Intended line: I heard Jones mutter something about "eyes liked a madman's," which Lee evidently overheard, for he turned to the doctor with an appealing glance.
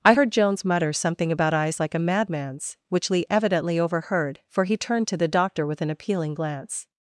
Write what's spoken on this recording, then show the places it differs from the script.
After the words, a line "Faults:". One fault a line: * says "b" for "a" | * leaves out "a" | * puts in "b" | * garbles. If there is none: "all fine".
I heard Jones mutter something about "eyes like a madman's," which Lee evidently overheard, for he turned to the doctor with an appealing glance.
Faults:
* says "like" for "liked"